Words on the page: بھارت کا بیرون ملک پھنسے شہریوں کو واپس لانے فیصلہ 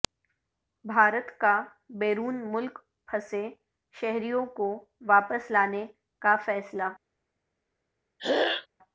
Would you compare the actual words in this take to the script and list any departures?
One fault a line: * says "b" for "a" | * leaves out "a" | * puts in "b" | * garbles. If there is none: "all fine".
* puts in "کا"